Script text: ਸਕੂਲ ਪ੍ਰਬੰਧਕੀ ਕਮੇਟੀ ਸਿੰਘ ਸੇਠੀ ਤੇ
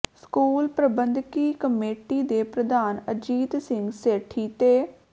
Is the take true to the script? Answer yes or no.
no